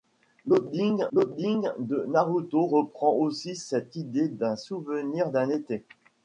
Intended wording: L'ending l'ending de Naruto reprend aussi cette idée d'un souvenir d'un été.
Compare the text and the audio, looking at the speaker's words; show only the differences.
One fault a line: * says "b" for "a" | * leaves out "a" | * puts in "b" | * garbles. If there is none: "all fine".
all fine